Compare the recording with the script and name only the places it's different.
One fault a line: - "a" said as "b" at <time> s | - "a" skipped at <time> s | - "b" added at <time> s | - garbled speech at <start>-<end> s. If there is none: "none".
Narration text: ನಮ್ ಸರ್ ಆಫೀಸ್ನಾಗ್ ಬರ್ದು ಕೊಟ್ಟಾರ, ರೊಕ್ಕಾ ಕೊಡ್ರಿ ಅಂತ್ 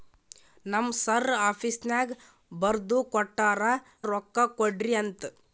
none